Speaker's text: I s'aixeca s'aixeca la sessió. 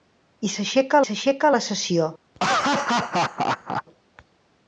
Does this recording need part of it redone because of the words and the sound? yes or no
yes